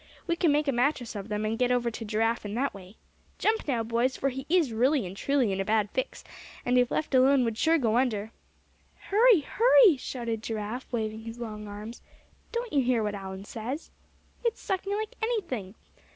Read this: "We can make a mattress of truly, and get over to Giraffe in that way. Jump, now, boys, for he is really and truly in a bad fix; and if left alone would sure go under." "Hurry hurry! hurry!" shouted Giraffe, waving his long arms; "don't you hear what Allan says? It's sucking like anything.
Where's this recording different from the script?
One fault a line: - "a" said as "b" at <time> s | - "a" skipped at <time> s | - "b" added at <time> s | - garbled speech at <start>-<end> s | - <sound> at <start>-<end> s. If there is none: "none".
- "truly" said as "them" at 1.3 s
- "hurry" skipped at 10.0 s